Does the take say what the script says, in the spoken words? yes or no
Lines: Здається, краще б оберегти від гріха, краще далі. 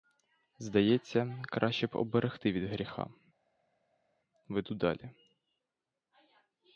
no